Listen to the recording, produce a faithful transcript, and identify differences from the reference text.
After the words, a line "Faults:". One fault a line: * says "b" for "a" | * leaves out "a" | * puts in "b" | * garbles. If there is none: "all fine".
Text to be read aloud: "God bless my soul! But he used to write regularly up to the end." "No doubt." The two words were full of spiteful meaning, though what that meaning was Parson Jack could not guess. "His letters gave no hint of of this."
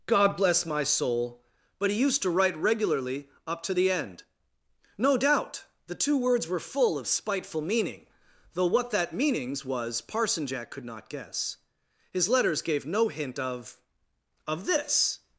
"God bless my soul! But he used to write regularly up to the end." "No doubt." The two words were full of spiteful meaning, though what that meanings was Parson Jack could not guess. "His letters gave no hint of of this."
Faults:
* says "meanings" for "meaning"